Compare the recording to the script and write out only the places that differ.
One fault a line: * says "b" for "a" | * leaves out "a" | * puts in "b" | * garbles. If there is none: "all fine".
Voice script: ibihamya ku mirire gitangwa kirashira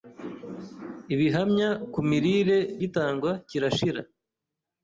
all fine